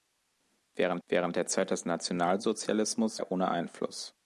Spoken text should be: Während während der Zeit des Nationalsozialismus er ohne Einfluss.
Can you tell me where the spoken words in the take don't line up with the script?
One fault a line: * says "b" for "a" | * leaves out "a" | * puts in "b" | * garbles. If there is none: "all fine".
all fine